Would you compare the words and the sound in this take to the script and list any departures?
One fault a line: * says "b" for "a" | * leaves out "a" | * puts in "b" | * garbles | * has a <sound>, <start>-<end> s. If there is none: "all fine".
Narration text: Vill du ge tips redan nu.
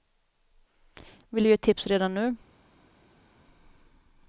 all fine